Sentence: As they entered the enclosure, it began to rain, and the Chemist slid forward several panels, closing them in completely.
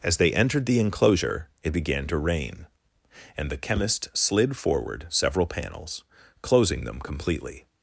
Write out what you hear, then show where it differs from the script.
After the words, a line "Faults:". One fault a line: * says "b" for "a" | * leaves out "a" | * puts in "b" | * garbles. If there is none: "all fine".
As they entered the enclosure, it began to rain, and the Chemist slid forward several panels, closing them completely.
Faults:
* leaves out "in"